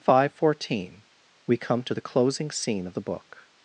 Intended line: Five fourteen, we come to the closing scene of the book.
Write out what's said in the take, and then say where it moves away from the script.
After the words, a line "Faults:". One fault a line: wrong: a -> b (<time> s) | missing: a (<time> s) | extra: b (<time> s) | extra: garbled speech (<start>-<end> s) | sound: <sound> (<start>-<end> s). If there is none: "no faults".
Five fourteen, we come to the closing scene of the book.
Faults:
no faults